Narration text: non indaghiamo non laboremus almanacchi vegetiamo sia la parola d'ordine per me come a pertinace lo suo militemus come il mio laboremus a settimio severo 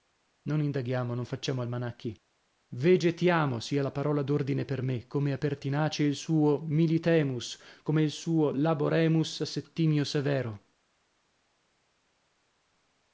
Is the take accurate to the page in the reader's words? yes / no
no